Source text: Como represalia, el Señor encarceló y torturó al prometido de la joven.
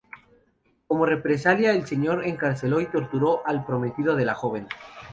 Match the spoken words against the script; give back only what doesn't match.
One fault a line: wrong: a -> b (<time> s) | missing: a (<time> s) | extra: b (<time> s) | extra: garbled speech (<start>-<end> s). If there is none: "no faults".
no faults